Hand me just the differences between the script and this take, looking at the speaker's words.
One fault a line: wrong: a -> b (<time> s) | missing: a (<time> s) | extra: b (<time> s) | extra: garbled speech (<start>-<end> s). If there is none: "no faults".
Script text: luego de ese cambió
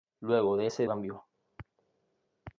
no faults